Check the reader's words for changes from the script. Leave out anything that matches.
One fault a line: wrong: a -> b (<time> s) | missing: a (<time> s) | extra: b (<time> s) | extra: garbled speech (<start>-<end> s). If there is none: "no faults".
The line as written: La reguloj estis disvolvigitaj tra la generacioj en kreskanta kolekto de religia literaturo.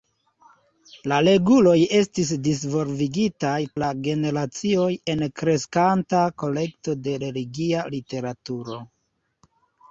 missing: tra (3.6 s)